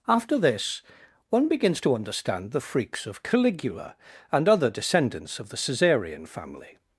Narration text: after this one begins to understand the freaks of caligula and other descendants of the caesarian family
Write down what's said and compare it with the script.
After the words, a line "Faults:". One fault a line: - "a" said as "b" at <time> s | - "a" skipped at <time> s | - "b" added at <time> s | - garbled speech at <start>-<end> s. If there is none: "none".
after this one begins to understand the freaks of caligula and other descendants of the caesarian family
Faults:
none